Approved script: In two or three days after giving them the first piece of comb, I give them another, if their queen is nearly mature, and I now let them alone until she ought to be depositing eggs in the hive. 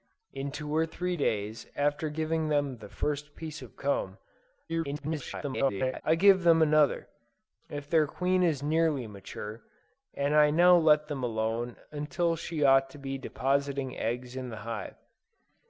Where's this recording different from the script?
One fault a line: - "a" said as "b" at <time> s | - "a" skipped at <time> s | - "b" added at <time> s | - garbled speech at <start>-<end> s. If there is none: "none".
- garbled speech at 4.7-6.0 s